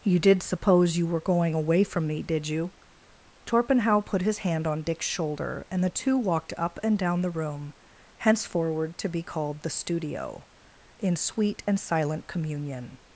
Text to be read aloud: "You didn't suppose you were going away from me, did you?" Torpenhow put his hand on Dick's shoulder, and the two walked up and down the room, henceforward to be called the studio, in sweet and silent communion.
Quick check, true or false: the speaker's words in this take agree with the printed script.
false